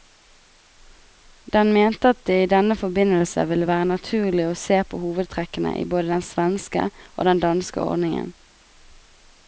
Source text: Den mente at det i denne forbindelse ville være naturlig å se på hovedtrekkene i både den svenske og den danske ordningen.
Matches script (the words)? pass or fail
pass